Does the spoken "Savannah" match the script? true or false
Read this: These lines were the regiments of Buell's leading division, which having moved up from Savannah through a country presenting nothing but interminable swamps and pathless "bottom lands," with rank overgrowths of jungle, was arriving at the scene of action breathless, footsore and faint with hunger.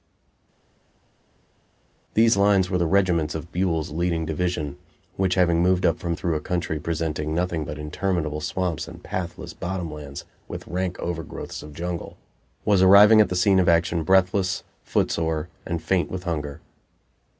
false